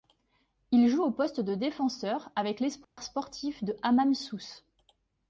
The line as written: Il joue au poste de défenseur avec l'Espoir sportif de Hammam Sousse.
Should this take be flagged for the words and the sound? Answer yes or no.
yes